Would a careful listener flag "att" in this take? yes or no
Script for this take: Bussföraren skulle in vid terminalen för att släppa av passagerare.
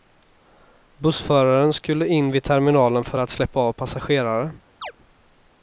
no